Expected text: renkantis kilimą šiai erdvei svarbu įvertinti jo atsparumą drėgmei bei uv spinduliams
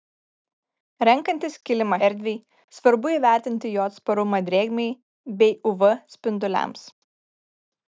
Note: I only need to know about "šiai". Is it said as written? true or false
false